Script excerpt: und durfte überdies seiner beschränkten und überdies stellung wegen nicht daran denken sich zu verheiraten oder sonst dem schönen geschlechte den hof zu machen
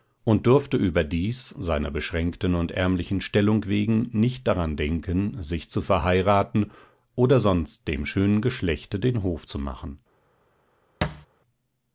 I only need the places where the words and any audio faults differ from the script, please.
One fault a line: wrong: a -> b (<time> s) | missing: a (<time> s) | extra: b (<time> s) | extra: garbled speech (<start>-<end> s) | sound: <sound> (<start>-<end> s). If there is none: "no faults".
wrong: überdies -> ärmlichen (2.7 s)
sound: thud (11.0-11.3 s)